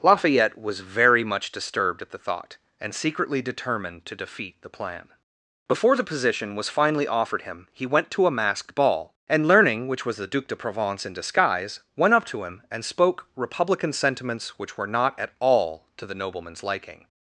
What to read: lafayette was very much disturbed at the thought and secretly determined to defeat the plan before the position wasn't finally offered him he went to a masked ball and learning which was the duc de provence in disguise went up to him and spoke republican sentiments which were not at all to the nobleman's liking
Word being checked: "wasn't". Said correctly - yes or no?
no